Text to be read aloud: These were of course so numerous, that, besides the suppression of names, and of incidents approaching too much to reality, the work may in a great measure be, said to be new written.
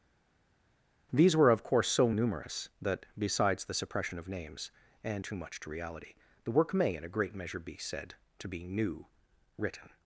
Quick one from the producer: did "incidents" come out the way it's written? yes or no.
no